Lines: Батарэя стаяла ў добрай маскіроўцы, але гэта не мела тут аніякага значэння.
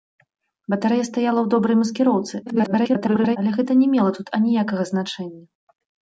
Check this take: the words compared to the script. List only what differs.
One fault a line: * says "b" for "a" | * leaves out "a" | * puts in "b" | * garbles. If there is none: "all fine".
* garbles